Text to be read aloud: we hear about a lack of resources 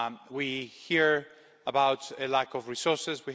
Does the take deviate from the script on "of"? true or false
false